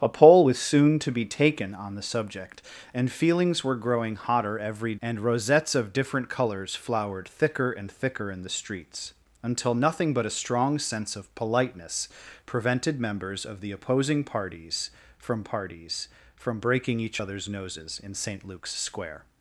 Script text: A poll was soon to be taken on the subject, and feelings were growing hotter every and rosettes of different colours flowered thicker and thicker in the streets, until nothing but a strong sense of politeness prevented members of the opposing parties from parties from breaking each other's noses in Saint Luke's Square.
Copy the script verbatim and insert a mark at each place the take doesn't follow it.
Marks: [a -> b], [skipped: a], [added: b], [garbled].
A poll was soon to be taken on the subject, and feelings were growing hotter every and rosettes of different colours flowered thicker and thicker in the streets, until nothing but a strong sense of politeness prevented members of the opposing parties from parties from breaking each other's noses in Saint Luke's Square.